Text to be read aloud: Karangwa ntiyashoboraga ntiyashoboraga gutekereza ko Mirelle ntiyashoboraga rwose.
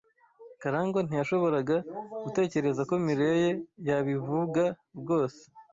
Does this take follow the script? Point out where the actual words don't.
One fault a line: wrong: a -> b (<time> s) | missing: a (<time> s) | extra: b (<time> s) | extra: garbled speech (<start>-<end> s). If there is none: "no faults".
missing: ntiyashoboraga (1.8 s)
wrong: ntiyashoboraga -> yabivuga (3.9 s)